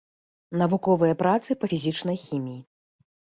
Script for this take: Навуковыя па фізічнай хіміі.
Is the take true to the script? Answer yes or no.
no